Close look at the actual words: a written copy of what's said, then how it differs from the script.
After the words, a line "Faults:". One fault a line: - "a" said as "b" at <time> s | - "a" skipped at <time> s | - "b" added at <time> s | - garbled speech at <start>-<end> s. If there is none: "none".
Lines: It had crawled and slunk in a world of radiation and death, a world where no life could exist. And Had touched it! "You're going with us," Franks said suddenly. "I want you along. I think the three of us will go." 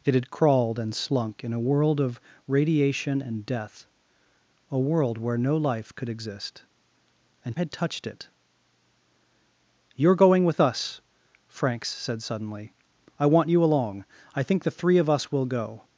It had crawled and slunk in a world of radiation and death, a world where no life could exist. And Had touched it! "You're going with us," Franks said suddenly. "I want you along. I think the three of us will go."
Faults:
none